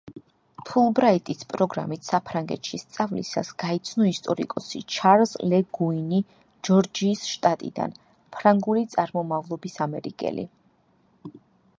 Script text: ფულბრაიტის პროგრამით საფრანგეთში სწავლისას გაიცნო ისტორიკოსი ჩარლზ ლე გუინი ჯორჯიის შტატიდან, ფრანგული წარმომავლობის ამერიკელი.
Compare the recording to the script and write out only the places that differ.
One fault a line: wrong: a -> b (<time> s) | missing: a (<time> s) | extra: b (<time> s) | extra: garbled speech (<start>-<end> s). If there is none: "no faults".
no faults